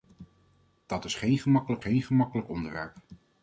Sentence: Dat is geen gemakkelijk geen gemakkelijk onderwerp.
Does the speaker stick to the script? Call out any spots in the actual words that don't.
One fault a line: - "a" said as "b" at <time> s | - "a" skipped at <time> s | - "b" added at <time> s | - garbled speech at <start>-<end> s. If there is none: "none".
none